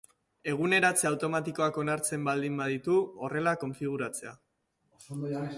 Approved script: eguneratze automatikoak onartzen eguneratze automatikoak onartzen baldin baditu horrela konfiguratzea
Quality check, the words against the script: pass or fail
fail